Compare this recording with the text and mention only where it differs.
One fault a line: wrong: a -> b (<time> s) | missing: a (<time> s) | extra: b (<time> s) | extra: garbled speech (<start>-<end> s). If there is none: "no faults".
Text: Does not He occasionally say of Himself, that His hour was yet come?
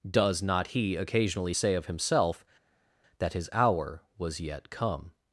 no faults